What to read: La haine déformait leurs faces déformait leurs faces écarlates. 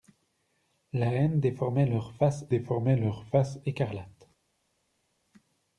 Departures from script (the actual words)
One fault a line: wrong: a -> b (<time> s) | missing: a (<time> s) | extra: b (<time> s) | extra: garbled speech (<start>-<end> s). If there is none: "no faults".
no faults